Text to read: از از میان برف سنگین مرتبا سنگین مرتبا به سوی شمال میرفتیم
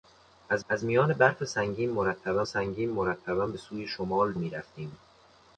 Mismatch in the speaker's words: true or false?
false